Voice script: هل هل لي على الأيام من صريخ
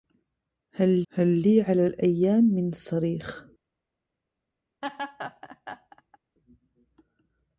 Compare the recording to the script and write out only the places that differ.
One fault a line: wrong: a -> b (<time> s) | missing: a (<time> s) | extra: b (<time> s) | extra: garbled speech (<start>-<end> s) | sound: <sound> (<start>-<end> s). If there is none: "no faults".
sound: laugh (4.8-6.2 s)